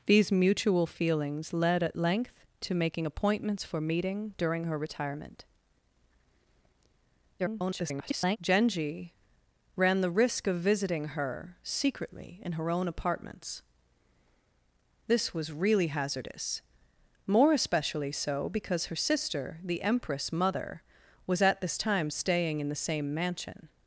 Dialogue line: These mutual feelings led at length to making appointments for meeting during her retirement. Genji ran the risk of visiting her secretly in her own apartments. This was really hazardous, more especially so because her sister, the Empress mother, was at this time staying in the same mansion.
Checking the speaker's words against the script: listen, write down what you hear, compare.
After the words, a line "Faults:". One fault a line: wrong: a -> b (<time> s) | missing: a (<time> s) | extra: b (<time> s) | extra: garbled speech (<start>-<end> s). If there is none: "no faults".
These mutual feelings led at length to making appointments for meeting during her retirement. [garbled] Genji ran the risk of visiting her secretly in her own apartments. This was really hazardous, more especially so because her sister, the Empress mother, was at this time staying in the same mansion.
Faults:
extra: garbled speech (7.4-8.4 s)